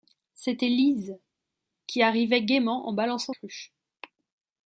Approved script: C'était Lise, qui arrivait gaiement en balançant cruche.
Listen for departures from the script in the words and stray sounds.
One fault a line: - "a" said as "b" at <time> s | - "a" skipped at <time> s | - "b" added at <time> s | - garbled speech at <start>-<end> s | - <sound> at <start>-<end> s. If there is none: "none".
none